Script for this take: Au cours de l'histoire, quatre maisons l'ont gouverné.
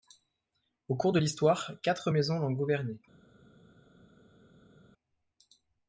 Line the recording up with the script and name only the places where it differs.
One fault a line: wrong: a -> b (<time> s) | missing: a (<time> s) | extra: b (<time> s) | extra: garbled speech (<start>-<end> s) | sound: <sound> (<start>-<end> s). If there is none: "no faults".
no faults